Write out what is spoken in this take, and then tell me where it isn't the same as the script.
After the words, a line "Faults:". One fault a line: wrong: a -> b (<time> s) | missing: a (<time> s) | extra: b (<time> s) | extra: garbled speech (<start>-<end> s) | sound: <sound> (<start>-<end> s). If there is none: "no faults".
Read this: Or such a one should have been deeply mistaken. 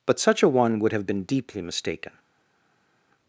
But such a one would have been deeply mistaken.
Faults:
wrong: Or -> But (0.1 s)
wrong: should -> would (0.8 s)